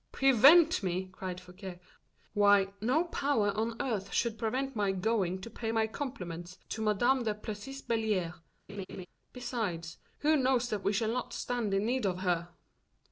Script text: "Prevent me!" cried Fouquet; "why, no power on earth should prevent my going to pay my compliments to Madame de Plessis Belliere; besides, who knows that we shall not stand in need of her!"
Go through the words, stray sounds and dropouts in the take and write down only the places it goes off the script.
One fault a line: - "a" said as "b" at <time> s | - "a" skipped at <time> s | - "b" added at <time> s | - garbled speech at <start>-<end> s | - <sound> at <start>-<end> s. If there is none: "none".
- laugh at 8.7-9.1 s